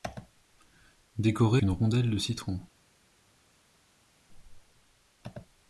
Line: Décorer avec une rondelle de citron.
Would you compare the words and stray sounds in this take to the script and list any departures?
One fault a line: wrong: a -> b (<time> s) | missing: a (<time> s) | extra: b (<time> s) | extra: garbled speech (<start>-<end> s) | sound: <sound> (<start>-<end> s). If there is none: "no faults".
missing: avec (1.6 s)